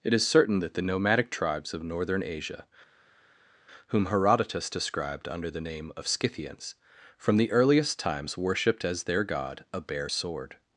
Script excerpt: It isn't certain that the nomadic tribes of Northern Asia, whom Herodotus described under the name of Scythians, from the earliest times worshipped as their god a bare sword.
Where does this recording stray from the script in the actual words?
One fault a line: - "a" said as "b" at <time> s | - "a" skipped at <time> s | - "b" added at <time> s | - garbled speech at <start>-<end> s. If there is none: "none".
- "isn't" said as "is" at 0.1 s